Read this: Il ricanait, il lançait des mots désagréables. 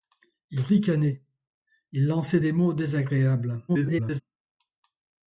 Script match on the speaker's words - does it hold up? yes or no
no